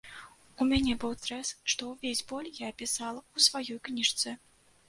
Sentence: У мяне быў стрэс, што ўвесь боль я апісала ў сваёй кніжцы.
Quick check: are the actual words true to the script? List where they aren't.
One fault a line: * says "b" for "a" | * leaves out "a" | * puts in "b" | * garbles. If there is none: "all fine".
all fine